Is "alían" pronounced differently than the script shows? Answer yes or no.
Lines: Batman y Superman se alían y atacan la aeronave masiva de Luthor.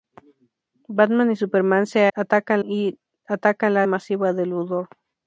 yes